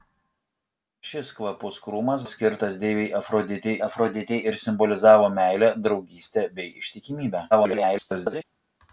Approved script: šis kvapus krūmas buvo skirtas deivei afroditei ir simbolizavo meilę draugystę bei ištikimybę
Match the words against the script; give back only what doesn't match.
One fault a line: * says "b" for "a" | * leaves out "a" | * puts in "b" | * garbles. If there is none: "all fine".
* leaves out "buvo"
* puts in "afroditei"
* garbles